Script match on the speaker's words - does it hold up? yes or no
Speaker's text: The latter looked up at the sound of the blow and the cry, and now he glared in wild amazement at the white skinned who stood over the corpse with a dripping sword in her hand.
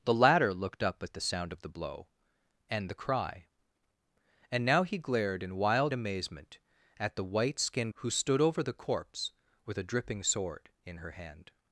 yes